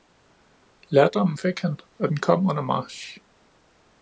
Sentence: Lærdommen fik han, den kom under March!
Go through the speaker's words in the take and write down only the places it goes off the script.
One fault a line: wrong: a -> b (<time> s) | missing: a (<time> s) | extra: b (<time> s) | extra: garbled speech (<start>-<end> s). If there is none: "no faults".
extra: og (2.0 s)